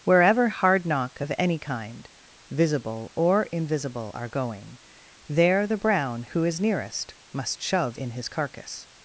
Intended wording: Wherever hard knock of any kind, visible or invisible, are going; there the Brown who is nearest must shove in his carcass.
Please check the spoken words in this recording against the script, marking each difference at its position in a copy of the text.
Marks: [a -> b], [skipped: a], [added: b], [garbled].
Wherever hard knock of any kind, visible or invisible, are going; there the Brown who is nearest must shove in his carcass.